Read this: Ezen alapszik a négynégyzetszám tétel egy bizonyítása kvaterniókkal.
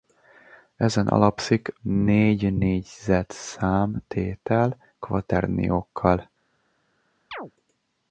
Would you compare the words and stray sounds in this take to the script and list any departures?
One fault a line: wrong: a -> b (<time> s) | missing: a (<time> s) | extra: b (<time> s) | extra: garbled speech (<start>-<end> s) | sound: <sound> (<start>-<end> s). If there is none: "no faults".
missing: a (1.8 s)
missing: egy bizonyítása (4.8 s)
sound: chirp (7.3-7.5 s)